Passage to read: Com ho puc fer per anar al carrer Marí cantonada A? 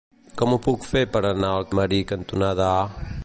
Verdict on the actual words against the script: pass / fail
fail